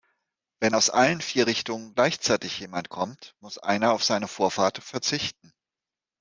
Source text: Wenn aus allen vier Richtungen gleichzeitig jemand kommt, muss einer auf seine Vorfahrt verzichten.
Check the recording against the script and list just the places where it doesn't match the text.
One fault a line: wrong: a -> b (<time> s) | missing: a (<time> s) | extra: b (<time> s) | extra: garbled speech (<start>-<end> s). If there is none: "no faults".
no faults